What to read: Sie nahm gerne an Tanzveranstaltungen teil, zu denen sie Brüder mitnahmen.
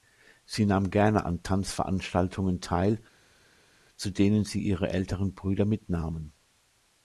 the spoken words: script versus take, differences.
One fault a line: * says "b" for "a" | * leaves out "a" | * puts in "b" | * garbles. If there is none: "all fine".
* puts in "ihre älteren"